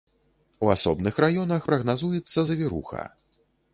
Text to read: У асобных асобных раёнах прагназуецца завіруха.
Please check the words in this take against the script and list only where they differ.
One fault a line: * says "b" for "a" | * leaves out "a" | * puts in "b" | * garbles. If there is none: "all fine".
* leaves out "асобных"